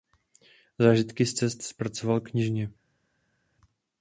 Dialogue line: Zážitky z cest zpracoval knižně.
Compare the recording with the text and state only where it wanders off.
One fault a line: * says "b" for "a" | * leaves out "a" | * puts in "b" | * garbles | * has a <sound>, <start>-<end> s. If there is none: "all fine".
all fine